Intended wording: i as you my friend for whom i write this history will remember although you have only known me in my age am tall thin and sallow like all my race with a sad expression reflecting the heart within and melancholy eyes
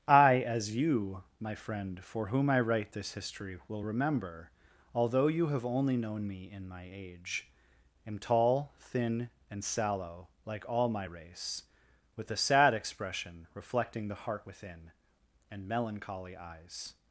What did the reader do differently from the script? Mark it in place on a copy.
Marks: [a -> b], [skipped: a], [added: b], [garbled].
i as you my friend for whom i write this history will remember although you have only known me in my age am tall thin and sallow like all my race with a sad expression reflecting the heart within and melancholy eyes